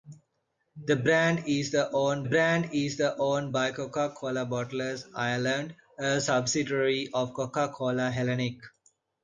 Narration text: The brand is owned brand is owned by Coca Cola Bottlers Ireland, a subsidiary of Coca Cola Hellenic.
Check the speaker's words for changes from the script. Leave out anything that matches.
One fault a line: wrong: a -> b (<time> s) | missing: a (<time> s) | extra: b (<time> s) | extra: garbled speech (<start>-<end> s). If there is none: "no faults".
no faults